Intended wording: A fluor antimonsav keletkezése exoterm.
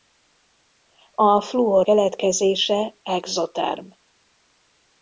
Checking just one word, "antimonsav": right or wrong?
wrong